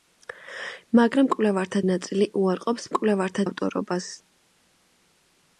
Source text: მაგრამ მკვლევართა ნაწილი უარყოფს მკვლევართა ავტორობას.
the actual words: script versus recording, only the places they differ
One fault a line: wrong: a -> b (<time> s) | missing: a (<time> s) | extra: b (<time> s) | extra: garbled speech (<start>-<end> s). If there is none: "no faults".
no faults